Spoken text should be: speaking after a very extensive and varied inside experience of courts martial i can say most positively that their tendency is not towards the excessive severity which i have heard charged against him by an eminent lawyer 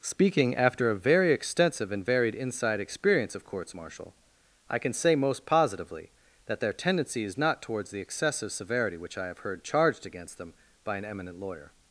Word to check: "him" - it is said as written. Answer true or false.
false